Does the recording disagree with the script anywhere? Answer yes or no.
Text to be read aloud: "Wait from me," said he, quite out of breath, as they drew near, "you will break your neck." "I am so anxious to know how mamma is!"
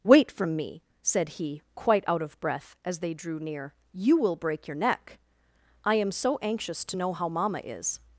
no